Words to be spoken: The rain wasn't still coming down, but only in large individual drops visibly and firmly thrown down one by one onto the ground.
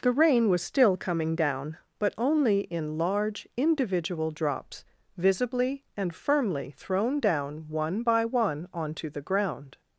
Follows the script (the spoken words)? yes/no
no